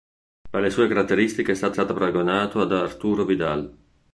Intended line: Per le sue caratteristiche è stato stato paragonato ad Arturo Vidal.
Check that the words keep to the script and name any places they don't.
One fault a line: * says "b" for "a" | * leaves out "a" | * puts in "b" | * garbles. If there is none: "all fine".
all fine